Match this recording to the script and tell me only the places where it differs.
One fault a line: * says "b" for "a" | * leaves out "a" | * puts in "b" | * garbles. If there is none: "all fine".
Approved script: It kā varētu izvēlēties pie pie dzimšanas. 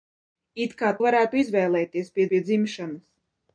all fine